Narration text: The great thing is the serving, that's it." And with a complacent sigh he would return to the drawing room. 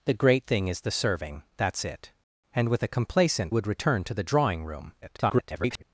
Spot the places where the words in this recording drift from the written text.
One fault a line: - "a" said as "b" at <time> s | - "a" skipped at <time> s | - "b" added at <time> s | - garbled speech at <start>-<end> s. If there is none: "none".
- "sigh he" skipped at 3.5 s
- garbled speech at 5.0-5.8 s